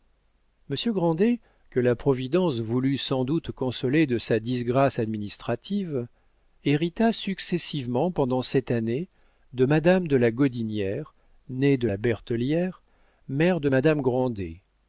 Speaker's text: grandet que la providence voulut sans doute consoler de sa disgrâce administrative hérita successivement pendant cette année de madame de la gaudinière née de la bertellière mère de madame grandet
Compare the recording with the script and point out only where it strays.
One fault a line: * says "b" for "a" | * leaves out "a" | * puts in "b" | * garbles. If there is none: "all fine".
all fine